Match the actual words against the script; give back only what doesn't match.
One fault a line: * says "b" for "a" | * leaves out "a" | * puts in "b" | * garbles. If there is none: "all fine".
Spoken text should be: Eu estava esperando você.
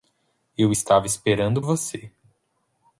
all fine